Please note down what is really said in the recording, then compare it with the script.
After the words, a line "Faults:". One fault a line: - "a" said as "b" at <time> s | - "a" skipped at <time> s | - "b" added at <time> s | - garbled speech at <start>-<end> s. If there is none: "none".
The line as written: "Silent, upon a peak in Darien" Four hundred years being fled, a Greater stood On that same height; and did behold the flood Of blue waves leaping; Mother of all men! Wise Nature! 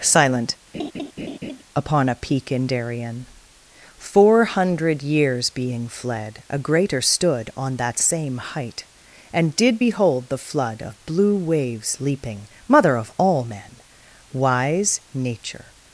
"Silent, upon a peak in Darien" Four hundred years being fled, a Greater stood On that same height; and did behold the flood Of blue waves leaping; Mother of all men! Wise Nature!
Faults:
none